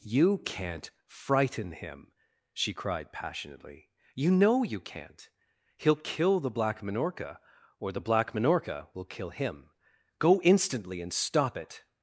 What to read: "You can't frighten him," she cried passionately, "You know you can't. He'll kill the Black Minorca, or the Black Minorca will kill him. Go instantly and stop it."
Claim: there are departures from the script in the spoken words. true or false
false